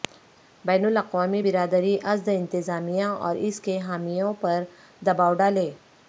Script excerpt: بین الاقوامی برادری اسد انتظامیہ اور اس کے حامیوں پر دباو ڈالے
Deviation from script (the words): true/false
false